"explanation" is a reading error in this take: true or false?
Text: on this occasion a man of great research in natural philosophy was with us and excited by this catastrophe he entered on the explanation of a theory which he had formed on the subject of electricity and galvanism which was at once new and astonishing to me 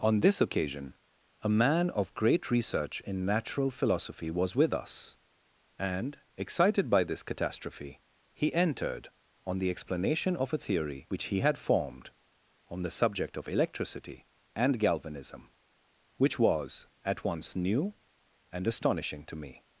false